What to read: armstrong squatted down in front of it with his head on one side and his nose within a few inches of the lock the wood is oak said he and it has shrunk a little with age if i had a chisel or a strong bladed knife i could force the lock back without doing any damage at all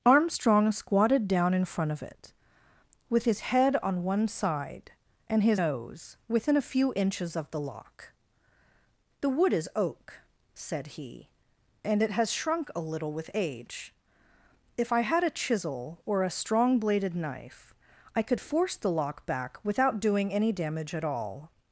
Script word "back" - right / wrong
right